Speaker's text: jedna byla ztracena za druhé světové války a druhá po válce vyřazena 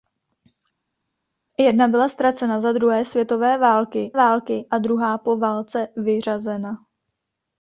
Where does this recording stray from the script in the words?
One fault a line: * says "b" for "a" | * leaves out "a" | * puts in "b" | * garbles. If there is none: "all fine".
* puts in "války"